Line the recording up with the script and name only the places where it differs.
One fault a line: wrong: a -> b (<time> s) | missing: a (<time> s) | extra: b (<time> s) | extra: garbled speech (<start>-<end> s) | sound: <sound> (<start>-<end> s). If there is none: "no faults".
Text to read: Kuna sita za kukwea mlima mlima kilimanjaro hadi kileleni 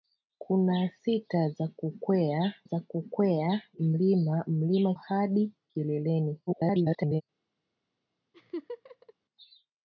extra: za kukwea (2.6 s)
missing: kilimanjaro (4.9 s)
extra: garbled speech (6.5-7.2 s)
sound: laugh (8.3-9.1 s)